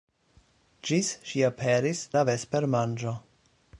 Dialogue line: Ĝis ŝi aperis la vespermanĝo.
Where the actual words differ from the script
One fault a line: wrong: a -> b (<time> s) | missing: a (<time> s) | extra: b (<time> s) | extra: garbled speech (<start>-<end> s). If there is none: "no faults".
no faults